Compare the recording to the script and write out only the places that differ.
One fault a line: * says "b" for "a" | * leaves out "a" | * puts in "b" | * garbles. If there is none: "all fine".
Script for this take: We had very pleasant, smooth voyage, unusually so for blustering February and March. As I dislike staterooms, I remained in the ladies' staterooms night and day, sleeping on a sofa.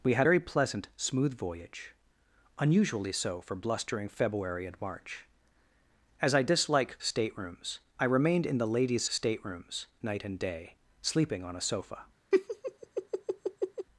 all fine